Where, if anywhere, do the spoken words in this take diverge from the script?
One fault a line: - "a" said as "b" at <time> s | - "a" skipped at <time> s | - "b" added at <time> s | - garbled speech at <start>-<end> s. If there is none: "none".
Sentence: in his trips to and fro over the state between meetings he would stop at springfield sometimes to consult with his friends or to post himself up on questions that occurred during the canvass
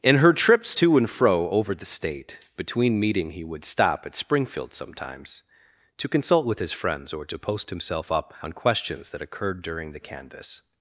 - "his" said as "her" at 0.2 s
- "meetings" said as "meeting" at 3.0 s